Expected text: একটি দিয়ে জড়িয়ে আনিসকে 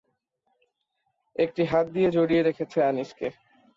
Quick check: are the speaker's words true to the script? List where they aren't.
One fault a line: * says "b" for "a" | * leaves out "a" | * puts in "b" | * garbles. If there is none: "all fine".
* puts in "হাত"
* puts in "রেখেছে"